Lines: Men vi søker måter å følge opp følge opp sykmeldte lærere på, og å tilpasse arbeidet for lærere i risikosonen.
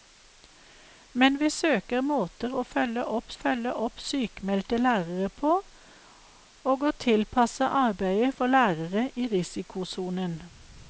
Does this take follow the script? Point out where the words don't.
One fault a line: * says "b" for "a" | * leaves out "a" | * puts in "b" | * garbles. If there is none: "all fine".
all fine